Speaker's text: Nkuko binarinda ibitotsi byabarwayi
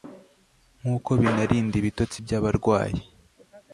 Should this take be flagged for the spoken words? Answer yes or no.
no